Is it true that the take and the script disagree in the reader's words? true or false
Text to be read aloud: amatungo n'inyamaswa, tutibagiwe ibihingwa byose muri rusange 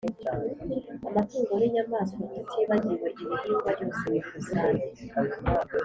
false